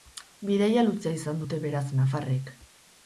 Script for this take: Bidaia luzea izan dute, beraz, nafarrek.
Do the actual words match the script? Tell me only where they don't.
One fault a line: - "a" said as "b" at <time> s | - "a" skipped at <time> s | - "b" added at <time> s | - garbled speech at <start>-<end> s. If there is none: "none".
none